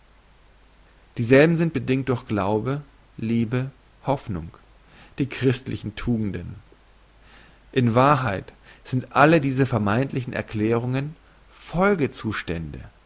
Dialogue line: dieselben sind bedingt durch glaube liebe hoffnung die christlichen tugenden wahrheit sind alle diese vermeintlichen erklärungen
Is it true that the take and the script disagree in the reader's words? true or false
true